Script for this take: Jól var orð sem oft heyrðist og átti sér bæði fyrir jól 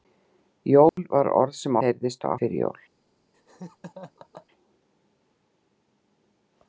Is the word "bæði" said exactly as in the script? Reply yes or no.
no